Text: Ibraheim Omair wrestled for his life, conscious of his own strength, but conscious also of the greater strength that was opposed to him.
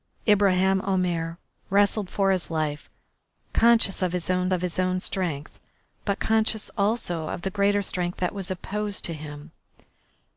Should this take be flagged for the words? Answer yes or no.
yes